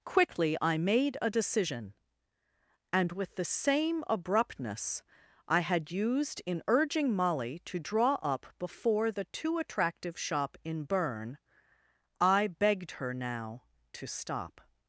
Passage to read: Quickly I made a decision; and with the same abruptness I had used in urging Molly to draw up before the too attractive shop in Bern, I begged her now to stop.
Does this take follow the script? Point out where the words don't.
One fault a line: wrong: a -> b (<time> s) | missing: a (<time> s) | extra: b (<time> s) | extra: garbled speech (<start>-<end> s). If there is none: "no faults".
no faults